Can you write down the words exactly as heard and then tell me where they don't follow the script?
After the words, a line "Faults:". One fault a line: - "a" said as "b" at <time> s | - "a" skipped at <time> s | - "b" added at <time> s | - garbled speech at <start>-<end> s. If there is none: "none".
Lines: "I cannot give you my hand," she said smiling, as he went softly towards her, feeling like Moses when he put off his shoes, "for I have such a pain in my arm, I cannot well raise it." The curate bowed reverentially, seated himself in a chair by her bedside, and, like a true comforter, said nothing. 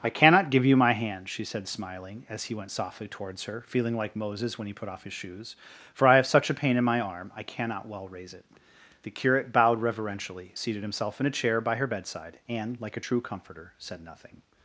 "I cannot give you my hand," she said smiling, as he went softly towards her, feeling like Moses when he put off his shoes, "for I have such a pain in my arm, I cannot well raise it." The curate bowed reverentially, seated himself in a chair by her bedside, and, like a true comforter, said nothing.
Faults:
none